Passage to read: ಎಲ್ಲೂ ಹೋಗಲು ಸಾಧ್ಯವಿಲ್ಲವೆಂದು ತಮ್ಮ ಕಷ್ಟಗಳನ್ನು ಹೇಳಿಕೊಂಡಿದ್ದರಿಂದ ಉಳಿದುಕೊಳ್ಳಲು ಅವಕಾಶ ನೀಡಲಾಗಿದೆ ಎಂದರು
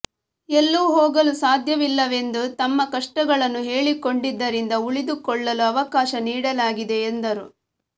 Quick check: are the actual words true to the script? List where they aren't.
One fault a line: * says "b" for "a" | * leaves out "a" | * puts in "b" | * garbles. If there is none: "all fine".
all fine